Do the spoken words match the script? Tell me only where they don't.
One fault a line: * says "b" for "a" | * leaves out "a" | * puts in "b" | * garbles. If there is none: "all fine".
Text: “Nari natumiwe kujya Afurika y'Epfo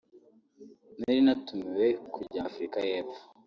all fine